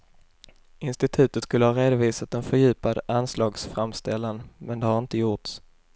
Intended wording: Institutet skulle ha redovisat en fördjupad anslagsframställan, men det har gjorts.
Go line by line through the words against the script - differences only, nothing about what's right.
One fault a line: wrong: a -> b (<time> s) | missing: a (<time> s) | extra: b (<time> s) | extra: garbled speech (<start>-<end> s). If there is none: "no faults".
extra: inte (5.0 s)